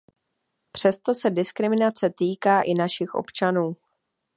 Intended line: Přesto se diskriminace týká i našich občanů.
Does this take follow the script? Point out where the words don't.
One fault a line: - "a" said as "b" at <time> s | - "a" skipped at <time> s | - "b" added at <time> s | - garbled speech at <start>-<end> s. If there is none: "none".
none